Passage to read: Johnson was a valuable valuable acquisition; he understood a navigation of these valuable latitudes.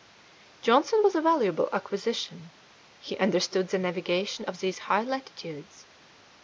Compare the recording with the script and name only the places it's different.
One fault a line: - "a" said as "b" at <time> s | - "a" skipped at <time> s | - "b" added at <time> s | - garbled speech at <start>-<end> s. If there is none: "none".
- "valuable" skipped at 1.7 s
- "a" said as "the" at 3.7 s
- "valuable" said as "high" at 4.8 s